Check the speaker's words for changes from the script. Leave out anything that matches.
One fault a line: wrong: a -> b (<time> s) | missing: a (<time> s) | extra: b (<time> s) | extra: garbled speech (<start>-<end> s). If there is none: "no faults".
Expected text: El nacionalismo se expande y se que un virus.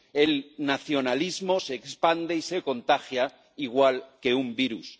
extra: contagia igual (2.6 s)